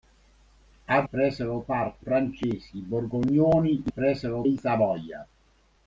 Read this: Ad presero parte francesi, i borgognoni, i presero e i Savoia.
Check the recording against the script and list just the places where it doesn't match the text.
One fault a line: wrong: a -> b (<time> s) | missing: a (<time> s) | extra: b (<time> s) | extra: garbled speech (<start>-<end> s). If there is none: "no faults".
no faults